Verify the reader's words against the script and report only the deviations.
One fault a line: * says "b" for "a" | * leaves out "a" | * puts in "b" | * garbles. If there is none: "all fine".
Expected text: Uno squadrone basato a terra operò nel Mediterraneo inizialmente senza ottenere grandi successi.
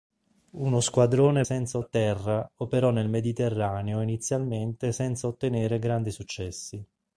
* says "senza" for "basato"